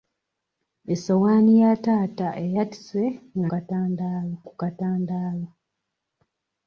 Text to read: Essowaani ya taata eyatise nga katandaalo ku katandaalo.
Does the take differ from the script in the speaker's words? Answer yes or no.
no